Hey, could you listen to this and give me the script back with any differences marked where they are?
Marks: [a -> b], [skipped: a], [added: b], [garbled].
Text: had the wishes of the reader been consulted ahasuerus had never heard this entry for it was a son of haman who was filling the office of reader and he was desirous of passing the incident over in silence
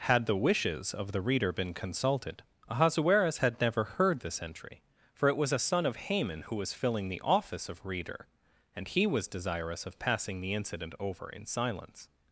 had the wishes of the reader been consulted ahasuerus had never heard this entry for it was a son of haman who was filling the office of reader and he was desirous of passing the incident over in silence